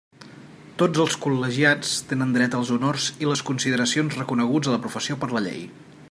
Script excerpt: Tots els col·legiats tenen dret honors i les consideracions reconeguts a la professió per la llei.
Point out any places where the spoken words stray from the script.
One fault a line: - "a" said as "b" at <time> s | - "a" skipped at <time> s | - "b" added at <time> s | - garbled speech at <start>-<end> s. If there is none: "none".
- "als" added at 2.6 s